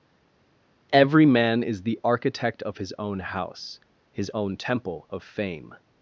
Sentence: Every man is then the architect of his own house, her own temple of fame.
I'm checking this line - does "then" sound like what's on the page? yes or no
no